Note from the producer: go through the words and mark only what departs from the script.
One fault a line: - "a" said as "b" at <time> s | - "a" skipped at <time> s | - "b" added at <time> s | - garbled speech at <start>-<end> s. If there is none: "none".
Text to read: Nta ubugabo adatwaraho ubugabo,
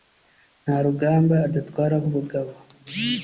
- "ubugabo" said as "rugamba" at 0.8 s